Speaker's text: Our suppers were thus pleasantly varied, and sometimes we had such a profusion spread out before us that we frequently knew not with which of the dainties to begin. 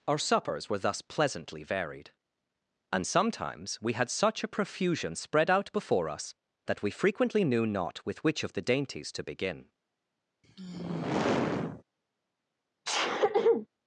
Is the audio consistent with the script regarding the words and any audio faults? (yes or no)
no